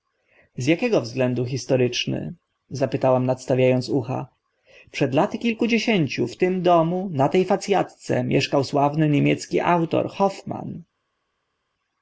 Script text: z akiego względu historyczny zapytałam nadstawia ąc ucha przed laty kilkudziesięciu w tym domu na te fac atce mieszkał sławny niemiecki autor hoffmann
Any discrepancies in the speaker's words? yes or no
no